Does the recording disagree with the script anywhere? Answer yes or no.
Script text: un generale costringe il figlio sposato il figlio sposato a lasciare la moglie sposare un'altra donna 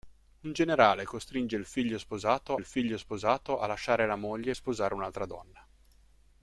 no